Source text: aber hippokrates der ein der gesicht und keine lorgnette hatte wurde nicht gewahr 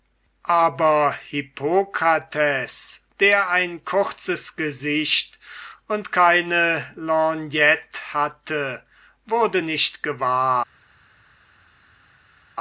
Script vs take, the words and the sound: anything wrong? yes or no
yes